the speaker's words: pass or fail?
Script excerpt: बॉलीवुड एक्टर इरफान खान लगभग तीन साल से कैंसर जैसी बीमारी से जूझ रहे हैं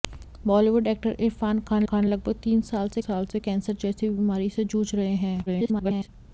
fail